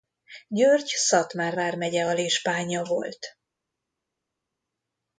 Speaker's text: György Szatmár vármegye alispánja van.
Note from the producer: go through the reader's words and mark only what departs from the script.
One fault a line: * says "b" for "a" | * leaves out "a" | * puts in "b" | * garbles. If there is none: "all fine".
* says "volt" for "van"